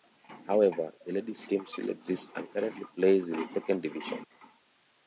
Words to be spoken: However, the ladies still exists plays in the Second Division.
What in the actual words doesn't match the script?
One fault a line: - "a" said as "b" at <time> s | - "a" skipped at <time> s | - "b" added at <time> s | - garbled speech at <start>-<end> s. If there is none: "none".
- "team" added at 1.4 s
- "and currently" added at 2.4 s